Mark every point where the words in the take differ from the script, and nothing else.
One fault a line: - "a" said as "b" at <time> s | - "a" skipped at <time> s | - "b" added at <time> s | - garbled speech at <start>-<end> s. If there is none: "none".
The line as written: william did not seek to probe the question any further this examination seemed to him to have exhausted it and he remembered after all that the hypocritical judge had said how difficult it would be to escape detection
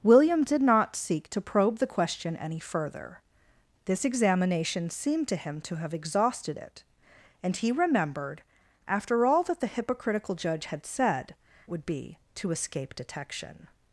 - "how difficult it" skipped at 11.3 s